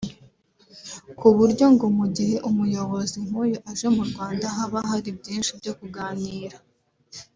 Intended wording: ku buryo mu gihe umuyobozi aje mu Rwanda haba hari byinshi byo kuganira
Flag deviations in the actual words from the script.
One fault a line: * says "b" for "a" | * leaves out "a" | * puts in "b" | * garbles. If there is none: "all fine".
* puts in "ngo"
* puts in "nk'uyu"